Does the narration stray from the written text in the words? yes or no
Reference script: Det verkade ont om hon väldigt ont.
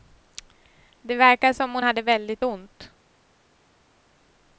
yes